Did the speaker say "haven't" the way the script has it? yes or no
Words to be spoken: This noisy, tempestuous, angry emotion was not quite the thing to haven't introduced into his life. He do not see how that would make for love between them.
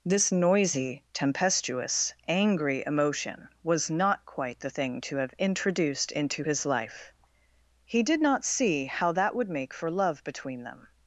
no